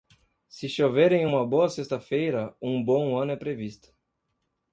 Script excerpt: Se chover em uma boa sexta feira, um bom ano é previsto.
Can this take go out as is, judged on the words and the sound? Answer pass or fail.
pass